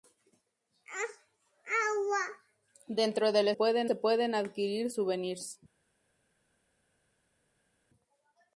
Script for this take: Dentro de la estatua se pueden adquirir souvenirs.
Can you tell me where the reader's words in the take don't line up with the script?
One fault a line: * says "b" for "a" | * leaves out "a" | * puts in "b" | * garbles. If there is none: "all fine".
* says "pueden" for "estatua"